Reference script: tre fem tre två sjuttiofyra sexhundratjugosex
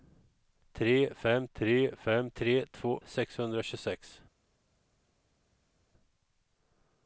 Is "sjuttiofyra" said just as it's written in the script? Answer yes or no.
no